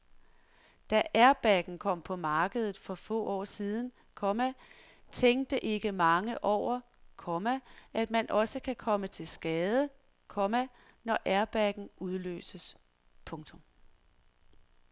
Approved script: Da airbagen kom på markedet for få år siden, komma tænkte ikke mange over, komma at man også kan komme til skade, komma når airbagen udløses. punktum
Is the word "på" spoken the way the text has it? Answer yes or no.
yes